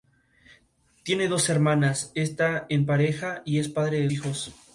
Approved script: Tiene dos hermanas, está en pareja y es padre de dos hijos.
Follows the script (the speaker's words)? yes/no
no